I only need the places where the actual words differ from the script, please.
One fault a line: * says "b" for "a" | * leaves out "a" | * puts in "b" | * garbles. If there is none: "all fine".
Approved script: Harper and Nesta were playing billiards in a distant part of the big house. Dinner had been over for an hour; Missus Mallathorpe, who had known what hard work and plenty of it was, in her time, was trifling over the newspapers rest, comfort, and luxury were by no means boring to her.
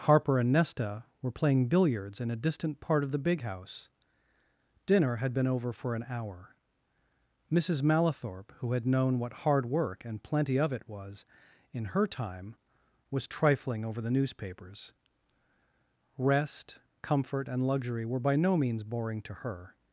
all fine